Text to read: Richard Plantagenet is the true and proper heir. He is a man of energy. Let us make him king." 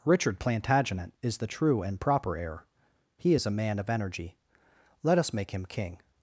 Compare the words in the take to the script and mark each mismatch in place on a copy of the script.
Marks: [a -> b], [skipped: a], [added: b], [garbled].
Richard Plantagenet is the true and proper heir. He is a man of energy. Let us make him king."